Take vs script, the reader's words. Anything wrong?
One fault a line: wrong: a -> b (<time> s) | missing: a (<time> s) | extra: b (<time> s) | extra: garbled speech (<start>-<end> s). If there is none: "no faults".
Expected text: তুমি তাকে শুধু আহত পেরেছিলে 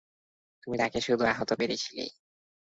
no faults